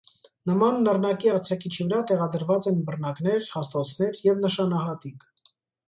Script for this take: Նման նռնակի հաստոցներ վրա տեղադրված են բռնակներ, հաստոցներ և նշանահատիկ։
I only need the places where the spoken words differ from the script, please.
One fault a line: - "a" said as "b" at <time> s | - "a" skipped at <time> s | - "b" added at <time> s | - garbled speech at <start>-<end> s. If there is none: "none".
- "հաստոցներ" said as "արձակիչի" at 1.3 s